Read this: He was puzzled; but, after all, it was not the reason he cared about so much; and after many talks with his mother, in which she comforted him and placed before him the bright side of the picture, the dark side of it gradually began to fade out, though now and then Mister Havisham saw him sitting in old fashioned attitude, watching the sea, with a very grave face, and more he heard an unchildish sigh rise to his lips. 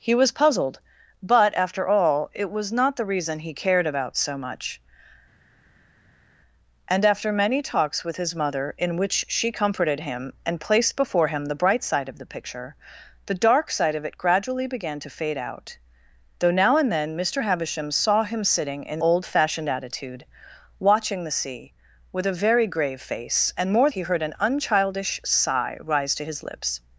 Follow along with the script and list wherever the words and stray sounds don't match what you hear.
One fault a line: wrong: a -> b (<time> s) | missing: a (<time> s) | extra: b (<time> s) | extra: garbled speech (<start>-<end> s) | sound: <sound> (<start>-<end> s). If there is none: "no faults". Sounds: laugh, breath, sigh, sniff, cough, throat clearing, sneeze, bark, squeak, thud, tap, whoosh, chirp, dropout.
no faults